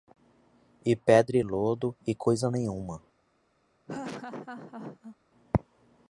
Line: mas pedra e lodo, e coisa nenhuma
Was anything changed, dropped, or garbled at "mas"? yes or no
yes